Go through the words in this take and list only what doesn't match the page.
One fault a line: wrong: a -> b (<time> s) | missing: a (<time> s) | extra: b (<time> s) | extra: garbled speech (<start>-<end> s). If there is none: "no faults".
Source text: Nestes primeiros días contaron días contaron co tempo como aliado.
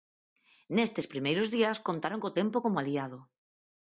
missing: días contaron (2.2 s)